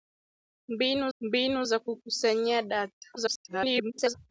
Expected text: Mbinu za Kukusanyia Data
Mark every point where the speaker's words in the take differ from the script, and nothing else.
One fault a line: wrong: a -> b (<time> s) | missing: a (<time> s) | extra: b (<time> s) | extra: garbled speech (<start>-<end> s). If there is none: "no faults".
extra: mbinu (1.2 s)
extra: garbled speech (3.2-4.1 s)